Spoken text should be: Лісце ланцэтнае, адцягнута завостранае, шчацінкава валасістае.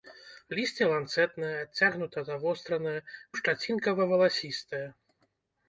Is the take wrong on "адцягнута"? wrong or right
right